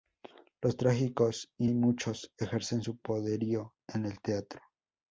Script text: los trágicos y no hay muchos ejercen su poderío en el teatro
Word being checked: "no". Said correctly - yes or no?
no